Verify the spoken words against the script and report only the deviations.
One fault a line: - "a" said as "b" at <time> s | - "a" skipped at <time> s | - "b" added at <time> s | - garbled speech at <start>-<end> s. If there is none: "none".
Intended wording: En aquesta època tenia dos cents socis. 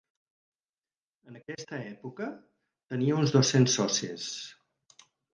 - "uns" added at 3.2 s